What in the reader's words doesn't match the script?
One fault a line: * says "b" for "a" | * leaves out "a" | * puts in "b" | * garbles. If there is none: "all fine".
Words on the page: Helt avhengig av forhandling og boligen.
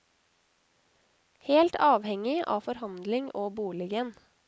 all fine